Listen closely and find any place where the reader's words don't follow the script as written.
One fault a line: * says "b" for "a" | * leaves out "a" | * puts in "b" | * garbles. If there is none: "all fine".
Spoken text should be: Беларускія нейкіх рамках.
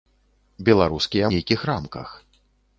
all fine